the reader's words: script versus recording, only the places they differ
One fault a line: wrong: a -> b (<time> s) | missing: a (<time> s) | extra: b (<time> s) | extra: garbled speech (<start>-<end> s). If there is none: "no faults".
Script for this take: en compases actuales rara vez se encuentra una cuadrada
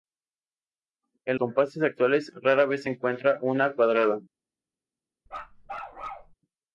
no faults